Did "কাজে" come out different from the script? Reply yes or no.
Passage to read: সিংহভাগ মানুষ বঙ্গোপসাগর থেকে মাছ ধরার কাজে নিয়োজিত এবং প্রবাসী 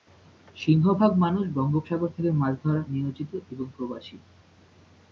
yes